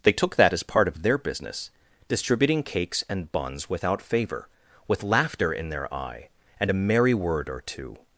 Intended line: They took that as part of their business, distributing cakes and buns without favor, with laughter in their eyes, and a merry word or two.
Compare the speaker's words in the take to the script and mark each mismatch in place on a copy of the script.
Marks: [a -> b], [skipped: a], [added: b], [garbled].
They took that as part of their business, distributing cakes and buns without favor, with laughter in their [eyes, -> eye] and a merry word or two.